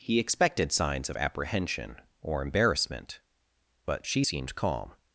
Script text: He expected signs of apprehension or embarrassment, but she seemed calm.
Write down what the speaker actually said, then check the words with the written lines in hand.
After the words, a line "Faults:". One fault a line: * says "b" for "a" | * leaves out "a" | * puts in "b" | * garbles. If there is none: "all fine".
He expected signs of apprehension or embarrassment, but she seemed calm.
Faults:
all fine